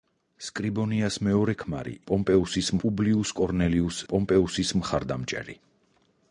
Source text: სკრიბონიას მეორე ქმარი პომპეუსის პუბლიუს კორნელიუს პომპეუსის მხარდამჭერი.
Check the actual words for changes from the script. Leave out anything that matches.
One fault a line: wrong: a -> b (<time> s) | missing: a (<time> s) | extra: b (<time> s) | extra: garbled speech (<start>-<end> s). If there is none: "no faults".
no faults